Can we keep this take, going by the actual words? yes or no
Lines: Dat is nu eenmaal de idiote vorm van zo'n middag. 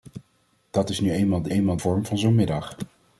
no